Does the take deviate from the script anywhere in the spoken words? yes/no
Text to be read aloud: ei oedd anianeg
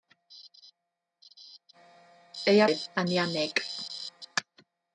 no